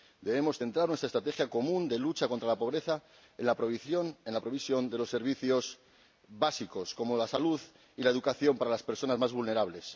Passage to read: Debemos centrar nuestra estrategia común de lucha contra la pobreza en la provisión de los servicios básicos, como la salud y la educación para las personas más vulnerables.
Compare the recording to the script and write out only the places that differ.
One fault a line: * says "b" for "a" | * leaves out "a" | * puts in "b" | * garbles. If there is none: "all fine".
all fine